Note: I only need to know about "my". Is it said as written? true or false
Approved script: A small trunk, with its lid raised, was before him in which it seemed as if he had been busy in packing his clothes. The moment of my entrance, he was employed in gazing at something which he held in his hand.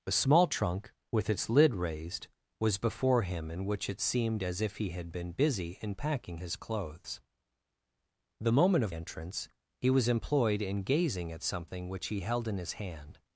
false